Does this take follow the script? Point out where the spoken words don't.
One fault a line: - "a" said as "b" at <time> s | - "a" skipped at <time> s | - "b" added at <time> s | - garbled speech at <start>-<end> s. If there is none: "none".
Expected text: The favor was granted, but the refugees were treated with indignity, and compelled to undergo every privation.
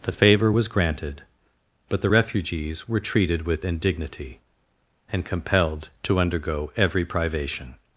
none